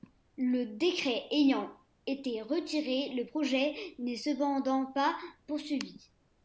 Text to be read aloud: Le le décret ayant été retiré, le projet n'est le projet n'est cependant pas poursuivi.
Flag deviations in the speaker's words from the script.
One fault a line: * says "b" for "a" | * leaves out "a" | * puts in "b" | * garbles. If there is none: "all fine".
* leaves out "le"
* leaves out "le projet n'est"